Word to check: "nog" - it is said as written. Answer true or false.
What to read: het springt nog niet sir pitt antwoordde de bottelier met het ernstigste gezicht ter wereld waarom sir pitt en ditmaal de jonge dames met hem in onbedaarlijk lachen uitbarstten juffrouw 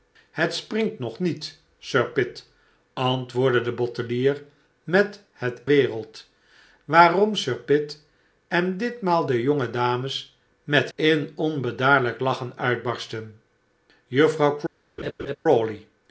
true